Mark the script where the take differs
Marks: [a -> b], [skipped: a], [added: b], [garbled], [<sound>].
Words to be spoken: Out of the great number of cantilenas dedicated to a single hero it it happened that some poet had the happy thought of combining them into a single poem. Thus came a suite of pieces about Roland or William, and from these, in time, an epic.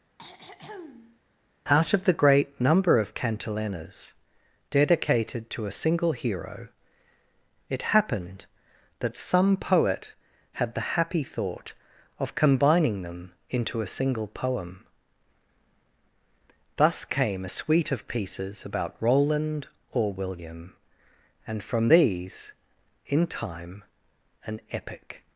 [throat clearing] Out of the great number of cantilenas dedicated to a single hero it [skipped: it] happened that some poet had the happy thought of combining them into a single poem. Thus came a suite of pieces about Roland or William, and from these, in time, an epic.